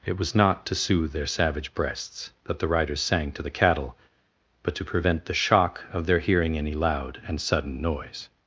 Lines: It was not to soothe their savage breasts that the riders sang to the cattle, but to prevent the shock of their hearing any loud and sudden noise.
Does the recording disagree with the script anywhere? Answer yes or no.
no